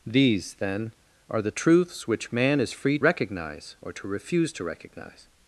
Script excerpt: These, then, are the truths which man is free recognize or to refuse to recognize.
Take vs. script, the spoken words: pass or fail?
pass